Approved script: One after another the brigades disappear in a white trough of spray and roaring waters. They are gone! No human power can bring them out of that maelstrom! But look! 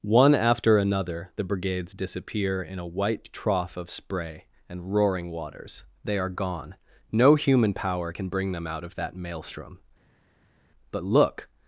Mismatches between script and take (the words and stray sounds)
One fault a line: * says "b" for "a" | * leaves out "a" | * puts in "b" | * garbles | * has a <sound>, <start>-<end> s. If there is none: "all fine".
all fine